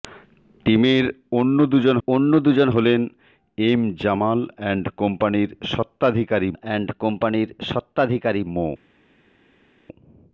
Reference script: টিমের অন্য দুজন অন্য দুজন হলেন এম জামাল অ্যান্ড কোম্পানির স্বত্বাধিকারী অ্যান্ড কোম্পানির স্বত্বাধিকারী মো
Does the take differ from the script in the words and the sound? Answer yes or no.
no